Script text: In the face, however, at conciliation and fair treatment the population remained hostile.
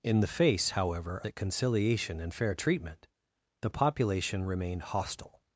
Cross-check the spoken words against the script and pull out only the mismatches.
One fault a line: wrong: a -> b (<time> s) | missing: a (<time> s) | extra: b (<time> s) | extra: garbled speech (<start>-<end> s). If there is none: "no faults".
no faults